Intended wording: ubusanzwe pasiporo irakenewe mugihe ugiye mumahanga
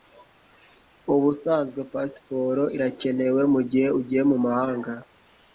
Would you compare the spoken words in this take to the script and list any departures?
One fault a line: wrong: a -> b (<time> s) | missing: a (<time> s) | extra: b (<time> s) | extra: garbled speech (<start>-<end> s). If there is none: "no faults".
no faults